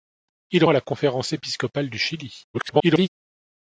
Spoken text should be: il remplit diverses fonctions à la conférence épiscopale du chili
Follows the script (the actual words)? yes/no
no